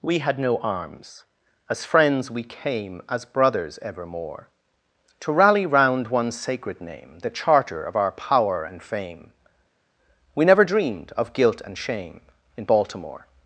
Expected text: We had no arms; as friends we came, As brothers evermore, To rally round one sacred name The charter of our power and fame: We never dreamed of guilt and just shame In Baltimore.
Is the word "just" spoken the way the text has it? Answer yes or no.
no